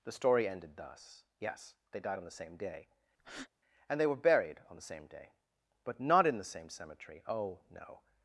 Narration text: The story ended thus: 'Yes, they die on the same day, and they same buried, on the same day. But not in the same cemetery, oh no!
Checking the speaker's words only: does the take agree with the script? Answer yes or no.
no